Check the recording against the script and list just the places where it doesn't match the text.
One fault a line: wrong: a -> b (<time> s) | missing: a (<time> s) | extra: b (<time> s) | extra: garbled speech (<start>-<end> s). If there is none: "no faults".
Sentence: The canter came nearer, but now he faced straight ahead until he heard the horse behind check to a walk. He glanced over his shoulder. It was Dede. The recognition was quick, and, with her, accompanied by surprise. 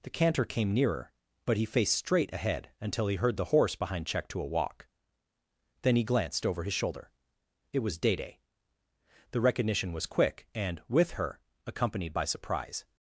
missing: now (1.6 s)
extra: Then (5.8 s)